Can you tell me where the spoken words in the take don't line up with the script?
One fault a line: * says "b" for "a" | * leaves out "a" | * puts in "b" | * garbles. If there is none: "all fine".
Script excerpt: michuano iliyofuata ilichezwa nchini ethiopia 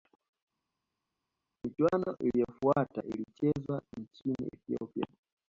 all fine